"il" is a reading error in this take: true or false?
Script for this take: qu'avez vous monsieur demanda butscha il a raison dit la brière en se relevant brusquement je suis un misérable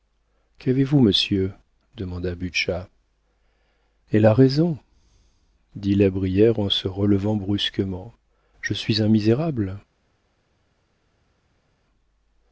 true